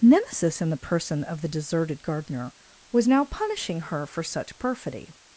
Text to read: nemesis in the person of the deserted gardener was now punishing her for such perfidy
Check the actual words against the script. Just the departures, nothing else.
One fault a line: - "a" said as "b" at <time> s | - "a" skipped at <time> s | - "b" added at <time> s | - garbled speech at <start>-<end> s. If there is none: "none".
none